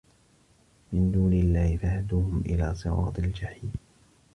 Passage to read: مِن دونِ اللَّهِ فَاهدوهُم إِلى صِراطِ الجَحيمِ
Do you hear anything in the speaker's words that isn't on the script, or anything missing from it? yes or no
no